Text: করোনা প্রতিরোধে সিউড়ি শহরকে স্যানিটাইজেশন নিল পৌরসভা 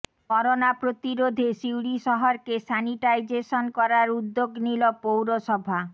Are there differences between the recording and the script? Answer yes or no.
yes